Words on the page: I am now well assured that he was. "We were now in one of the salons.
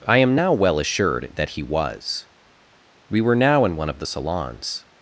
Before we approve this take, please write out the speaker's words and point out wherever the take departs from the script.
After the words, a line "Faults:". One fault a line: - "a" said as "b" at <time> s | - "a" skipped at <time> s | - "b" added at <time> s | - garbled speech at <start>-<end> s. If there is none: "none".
I am now well assured that he was. "We were now in one of the salons.
Faults:
none